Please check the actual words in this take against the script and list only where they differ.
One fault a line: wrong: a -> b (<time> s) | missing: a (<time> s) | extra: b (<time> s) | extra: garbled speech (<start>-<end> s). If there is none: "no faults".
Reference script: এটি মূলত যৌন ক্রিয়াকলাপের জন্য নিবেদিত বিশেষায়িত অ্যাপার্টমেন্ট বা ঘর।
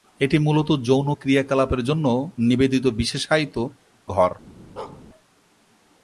missing: অ্যাপার্টমেন্ট বা (3.5 s)